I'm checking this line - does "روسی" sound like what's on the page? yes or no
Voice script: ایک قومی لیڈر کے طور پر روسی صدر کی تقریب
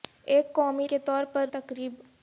no